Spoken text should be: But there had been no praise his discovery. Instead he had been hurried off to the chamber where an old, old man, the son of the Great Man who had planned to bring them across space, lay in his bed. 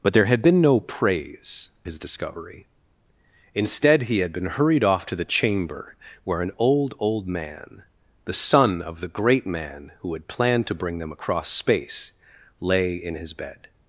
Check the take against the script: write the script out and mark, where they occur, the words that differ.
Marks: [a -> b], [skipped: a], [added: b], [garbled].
But there had been no praise his discovery. Instead he had been hurried off to the chamber where an old, old man, the son of the Great Man who had planned to bring them across space, lay in his bed.